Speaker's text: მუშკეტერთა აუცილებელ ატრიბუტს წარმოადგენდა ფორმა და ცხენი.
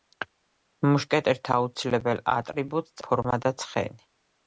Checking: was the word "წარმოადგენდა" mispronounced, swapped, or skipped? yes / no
yes